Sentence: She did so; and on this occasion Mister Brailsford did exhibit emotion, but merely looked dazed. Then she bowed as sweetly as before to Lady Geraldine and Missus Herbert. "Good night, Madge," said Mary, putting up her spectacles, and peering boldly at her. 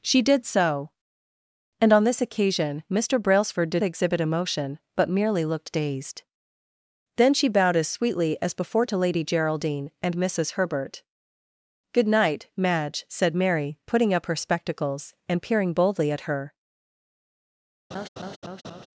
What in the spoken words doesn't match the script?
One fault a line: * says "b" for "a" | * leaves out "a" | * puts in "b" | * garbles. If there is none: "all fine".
all fine